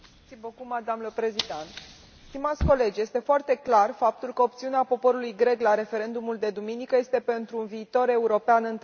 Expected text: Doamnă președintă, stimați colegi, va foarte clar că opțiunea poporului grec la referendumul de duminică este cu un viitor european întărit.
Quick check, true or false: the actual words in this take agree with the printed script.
false